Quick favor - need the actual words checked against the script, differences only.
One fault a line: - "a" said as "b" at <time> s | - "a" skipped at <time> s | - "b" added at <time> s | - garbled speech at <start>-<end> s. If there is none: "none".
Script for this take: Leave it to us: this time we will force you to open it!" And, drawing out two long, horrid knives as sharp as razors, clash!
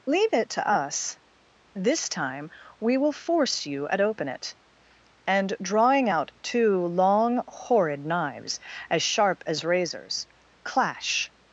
- "to" said as "at" at 3.9 s